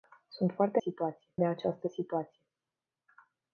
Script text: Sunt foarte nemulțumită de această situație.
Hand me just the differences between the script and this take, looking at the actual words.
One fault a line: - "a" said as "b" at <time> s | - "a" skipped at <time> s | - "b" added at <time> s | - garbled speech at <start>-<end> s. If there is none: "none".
- "nemulțumită" said as "situație" at 0.8 s